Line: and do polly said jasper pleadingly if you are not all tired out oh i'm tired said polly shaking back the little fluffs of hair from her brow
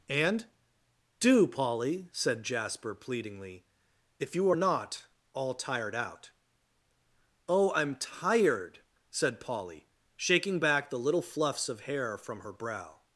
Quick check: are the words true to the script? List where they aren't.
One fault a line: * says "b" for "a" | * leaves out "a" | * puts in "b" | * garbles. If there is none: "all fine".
all fine